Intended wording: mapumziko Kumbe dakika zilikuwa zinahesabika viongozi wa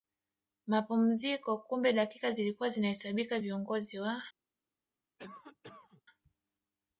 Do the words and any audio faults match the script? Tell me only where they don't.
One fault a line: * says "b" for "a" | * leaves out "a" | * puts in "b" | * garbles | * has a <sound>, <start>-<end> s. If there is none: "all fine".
* has a cough, 5.2-6.0 s